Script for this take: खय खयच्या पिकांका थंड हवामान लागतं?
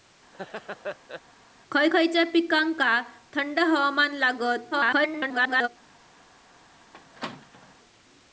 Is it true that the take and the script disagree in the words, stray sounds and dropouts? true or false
true